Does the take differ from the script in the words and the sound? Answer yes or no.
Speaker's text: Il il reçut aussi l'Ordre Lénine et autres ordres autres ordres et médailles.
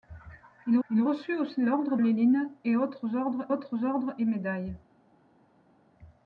no